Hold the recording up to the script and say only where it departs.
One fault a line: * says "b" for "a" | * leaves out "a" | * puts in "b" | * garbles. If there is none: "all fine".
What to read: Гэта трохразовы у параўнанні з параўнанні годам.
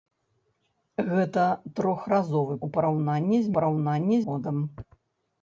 all fine